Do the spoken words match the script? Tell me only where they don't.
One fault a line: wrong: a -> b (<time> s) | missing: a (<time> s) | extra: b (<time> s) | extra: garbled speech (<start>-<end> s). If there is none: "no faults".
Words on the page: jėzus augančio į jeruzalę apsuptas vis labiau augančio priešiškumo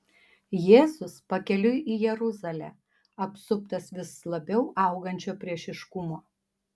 wrong: augančio -> pakeliui (1.3 s)